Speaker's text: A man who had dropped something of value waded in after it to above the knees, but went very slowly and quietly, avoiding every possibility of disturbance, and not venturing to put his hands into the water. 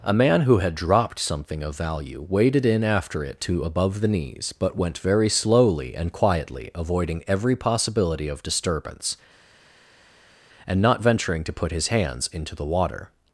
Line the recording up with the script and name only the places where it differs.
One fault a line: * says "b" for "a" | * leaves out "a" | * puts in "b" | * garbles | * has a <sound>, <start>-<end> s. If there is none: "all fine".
all fine